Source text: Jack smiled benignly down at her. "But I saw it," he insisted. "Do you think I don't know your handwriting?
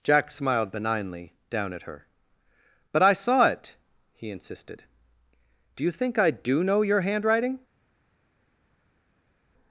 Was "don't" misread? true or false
true